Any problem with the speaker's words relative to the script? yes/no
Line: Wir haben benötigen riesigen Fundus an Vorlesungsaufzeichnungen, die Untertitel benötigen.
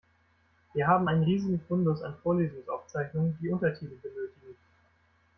yes